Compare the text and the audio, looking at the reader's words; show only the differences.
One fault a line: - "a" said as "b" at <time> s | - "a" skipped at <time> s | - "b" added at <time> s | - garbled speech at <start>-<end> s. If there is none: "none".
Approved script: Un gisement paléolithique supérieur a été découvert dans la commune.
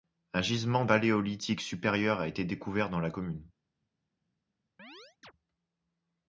none